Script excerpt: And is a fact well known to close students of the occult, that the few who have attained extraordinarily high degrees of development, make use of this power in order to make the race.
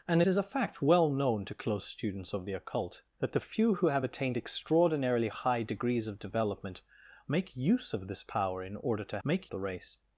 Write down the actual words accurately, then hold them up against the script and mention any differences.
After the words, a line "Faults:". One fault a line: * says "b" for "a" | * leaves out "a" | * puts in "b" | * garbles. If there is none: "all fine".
And is a fact well known to close students of the occult, that the few who have attained extraordinarily high degrees of development, make use of this power in order to make the race.
Faults:
all fine